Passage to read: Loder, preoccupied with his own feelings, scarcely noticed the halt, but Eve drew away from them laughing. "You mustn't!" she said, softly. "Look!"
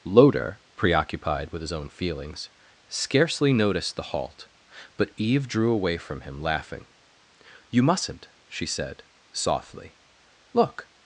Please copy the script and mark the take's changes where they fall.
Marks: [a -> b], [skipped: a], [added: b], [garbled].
Loder, preoccupied with his own feelings, scarcely noticed the halt, but Eve drew away from [them -> him] laughing. "You mustn't!" she said, softly. "Look!"